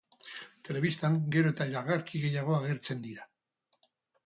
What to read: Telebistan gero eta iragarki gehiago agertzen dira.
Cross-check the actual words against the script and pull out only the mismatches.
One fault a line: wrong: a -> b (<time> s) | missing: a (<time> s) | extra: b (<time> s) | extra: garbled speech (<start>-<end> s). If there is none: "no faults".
no faults